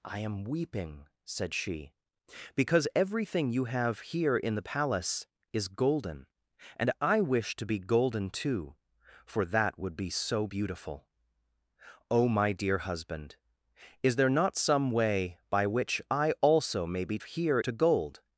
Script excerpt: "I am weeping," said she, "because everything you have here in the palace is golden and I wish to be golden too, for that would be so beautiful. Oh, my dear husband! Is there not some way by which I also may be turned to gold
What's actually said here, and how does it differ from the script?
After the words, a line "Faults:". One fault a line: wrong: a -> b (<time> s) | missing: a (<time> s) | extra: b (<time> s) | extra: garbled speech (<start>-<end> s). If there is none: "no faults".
"I am weeping," said she, "because everything you have here in the palace is golden and I wish to be golden too, for that would be so beautiful. Oh, my dear husband! Is there not some way by which I also may be here to gold
Faults:
wrong: turned -> here (17.2 s)